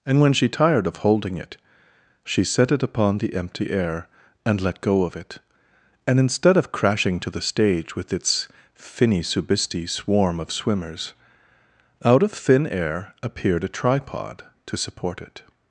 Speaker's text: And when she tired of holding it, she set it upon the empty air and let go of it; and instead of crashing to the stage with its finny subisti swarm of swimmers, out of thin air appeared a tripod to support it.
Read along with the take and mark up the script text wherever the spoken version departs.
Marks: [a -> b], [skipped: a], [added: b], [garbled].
And when she tired of holding it, she set it upon the empty air and let go of it; and instead of crashing to the stage with its finny subisti swarm of swimmers, out of thin air appeared a tripod to support it.